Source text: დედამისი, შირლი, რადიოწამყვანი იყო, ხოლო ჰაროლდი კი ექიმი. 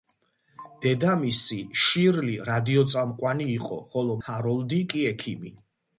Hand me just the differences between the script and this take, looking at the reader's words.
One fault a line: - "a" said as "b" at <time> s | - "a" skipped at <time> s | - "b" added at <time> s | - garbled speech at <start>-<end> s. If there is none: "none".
none